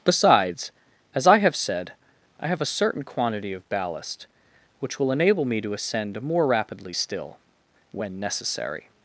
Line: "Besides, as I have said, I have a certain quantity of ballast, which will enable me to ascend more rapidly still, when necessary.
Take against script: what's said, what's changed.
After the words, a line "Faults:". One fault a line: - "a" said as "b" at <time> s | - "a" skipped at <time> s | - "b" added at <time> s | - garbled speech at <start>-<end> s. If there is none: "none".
"Besides, as I have said, I have a certain quantity of ballast, which will enable me to ascend more rapidly still, when necessary.
Faults:
none